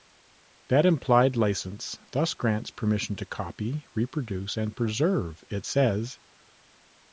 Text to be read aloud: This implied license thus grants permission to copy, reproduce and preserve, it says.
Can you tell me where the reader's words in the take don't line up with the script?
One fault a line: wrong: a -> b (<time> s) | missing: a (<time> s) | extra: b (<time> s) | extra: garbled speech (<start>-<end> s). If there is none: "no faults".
wrong: This -> That (0.7 s)